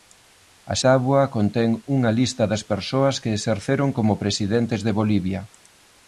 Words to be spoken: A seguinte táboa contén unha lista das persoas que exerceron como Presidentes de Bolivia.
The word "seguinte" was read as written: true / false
false